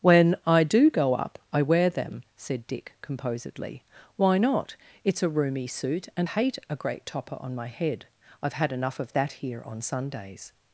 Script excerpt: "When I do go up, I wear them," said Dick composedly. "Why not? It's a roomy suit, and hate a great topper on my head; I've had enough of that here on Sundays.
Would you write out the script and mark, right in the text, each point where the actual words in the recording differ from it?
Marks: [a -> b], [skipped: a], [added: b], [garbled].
"When I do go up, I wear them," said Dick composedly. "Why not? It's a roomy suit, and hate a great topper on my head; I've had enough of that here on Sundays.